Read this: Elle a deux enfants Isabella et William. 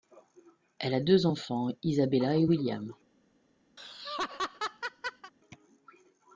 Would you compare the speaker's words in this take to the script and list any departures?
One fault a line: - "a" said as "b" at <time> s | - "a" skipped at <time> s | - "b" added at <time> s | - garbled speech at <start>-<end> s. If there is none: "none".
none